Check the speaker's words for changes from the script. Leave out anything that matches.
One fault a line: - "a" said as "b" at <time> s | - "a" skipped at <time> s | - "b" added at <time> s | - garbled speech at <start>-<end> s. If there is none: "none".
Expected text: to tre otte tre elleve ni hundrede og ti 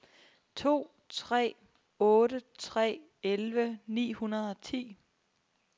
none